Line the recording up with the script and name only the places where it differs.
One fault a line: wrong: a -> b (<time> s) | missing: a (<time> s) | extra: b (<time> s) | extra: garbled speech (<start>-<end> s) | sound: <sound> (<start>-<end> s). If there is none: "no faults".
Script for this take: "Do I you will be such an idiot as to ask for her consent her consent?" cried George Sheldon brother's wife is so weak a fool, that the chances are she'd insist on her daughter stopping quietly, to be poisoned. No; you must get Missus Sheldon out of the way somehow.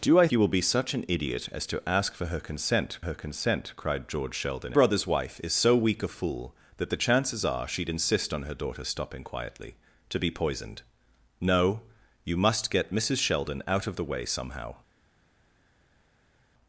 no faults